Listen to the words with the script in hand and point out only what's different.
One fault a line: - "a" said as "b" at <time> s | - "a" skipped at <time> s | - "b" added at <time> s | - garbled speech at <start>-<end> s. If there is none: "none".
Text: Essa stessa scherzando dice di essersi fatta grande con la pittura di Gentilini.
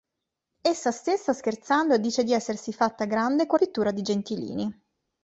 - "la" skipped at 3.6 s